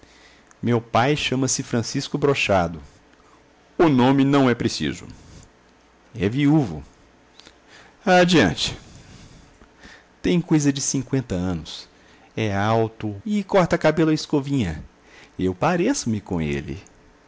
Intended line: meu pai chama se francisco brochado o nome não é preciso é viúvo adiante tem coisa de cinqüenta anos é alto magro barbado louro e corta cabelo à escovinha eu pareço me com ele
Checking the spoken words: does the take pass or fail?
fail